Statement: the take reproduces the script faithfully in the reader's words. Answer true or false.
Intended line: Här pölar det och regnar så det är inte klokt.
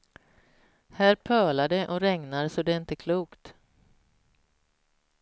true